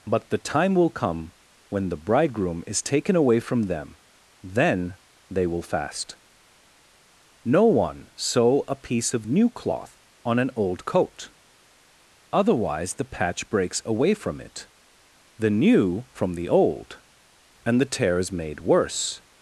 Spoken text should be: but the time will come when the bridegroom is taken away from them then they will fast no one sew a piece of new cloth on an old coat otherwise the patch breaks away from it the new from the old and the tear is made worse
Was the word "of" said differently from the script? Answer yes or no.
no